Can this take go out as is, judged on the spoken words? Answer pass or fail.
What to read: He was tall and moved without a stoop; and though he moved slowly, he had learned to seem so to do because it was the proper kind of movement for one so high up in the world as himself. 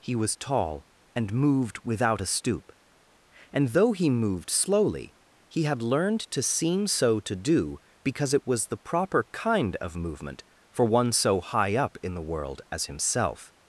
pass